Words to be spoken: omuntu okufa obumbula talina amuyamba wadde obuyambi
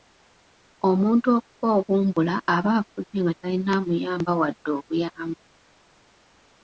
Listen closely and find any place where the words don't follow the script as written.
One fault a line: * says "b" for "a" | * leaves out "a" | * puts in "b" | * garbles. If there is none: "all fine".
* puts in "aba afudde nga"